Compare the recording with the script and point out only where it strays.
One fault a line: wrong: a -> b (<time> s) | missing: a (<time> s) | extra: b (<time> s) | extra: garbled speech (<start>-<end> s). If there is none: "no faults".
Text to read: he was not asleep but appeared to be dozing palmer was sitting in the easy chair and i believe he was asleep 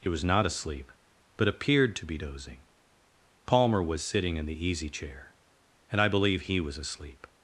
no faults